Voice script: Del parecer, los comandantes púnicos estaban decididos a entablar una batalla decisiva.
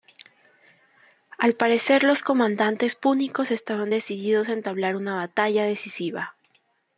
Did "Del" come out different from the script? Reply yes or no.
yes